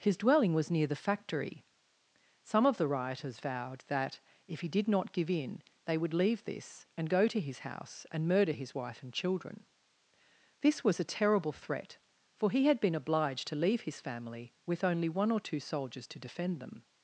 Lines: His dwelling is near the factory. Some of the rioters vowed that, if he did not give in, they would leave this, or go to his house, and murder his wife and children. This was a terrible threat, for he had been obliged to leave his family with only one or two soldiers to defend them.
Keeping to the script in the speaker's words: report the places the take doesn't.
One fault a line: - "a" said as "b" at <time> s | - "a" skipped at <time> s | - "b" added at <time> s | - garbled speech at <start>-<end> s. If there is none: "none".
- "is" said as "was" at 0.6 s
- "or" said as "and" at 7.0 s